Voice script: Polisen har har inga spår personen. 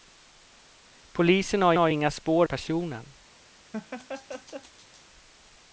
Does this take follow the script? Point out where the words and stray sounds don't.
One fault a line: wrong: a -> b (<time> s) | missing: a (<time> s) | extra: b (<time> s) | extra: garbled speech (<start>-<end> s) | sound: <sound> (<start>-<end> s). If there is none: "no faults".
sound: laugh (3.7-5.1 s)